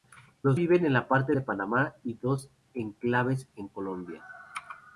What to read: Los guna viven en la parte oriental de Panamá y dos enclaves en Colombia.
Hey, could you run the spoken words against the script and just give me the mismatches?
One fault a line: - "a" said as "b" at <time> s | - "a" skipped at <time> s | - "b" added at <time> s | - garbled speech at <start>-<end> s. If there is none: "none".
- "guna" skipped at 0.6 s
- "oriental" skipped at 1.3 s